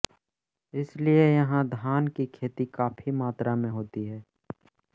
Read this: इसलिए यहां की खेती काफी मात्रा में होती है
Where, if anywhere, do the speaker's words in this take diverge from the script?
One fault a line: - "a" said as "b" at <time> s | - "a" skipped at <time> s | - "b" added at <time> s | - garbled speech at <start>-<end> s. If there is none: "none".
- "धान" added at 1.7 s